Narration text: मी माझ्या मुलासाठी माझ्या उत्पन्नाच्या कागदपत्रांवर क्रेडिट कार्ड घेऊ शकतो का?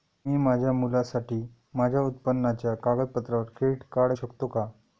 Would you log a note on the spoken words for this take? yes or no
yes